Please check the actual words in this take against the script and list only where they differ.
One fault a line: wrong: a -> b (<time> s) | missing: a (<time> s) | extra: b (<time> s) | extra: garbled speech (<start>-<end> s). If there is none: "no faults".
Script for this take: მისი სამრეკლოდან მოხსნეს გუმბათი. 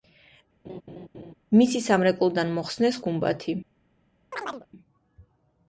no faults